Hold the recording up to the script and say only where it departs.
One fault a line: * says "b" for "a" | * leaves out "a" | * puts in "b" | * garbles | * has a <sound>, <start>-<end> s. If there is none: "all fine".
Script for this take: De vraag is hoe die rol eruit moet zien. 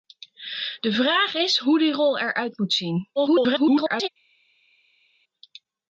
* garbles